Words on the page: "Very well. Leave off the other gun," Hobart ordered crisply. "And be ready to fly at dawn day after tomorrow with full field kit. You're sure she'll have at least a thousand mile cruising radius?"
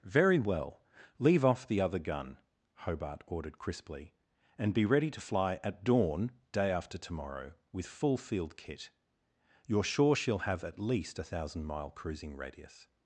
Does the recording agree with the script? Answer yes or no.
yes